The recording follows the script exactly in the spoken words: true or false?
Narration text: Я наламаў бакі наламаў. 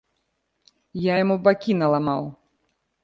false